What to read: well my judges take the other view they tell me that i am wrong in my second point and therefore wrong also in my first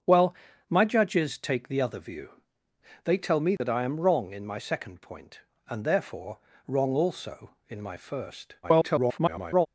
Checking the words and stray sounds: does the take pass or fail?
fail